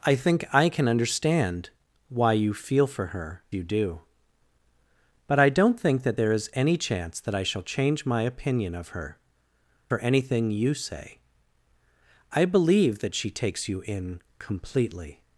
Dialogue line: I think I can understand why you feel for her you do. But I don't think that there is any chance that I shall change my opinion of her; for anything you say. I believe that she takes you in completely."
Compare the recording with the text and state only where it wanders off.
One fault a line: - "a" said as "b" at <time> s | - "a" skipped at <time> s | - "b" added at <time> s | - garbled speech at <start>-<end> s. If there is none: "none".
none